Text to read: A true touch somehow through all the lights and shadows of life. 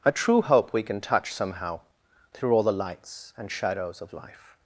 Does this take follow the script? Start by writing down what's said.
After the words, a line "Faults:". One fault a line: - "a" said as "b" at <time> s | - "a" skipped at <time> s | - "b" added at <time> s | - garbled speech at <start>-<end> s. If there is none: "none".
A true hope we can touch somehow through all the lights and shadows of life.
Faults:
- "hope we can" added at 0.4 s